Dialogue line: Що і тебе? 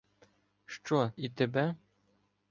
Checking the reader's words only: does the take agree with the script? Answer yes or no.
yes